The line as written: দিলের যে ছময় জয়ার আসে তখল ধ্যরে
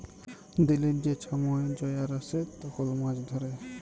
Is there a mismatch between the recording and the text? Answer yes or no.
yes